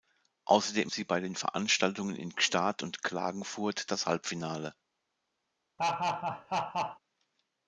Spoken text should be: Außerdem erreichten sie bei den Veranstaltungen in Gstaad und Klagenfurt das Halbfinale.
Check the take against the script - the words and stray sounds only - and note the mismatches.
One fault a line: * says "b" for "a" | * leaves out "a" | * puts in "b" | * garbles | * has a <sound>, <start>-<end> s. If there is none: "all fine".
* leaves out "erreichten"
* has a laugh, 5.8-7.0 s